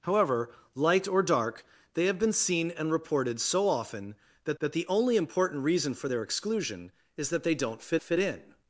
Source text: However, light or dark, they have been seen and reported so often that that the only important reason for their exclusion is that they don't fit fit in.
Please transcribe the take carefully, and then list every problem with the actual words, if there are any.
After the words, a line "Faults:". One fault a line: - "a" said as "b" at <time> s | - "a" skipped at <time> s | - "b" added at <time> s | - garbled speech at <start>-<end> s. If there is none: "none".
However, light or dark, they have been seen and reported so often that that the only important reason for their exclusion is that they don't fit fit in.
Faults:
none